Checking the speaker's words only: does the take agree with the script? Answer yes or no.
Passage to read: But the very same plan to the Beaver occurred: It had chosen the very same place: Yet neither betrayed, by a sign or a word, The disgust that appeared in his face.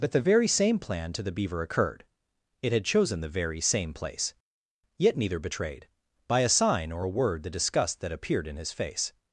yes